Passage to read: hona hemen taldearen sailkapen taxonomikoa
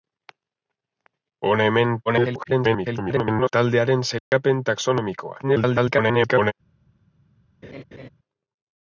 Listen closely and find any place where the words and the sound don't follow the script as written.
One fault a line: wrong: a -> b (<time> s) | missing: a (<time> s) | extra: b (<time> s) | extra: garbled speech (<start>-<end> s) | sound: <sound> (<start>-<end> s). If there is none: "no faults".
extra: garbled speech (2.1-3.5 s)
sound: dropout (4.2-4.3 s)
extra: garbled speech (5.4-6.5 s)
sound: laugh (7.6-8.1 s)